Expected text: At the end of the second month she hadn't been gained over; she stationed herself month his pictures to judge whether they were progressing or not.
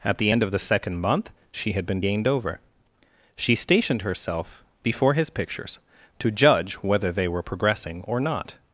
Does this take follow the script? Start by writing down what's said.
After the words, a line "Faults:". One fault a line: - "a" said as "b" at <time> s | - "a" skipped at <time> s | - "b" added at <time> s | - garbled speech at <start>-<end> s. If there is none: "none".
At the end of the second month she had been gained over; she stationed herself before his pictures to judge whether they were progressing or not.
Faults:
- "hadn't" said as "had" at 1.7 s
- "month" said as "before" at 4.8 s